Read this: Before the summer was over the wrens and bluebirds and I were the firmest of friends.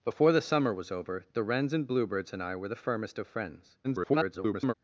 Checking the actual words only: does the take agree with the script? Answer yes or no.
no